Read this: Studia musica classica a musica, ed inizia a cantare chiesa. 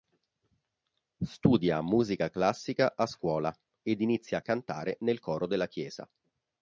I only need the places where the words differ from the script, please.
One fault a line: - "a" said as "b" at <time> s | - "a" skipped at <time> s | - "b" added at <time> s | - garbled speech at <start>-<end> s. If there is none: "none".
- "musica" said as "scuola" at 3.0 s
- "nel coro della" added at 5.0 s